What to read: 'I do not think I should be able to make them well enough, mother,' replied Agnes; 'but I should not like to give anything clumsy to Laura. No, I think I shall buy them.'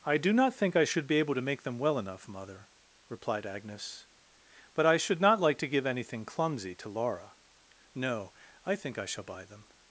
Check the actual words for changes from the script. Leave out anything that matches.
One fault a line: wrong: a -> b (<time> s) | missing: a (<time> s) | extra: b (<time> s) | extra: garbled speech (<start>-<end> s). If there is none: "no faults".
no faults